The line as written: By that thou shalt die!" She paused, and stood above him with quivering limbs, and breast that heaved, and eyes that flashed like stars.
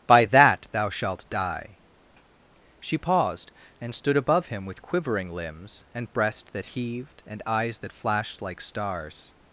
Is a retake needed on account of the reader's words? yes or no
no